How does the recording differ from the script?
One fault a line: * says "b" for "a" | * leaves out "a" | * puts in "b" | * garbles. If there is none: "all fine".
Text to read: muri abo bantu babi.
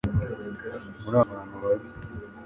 * leaves out "abo"